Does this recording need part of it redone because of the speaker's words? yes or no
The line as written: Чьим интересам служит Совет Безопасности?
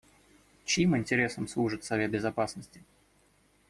no